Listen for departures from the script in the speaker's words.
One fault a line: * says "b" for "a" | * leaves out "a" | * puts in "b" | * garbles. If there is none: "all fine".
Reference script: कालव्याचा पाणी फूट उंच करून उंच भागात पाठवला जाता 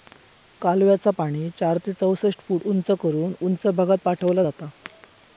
* puts in "चार ते चौसष्ट"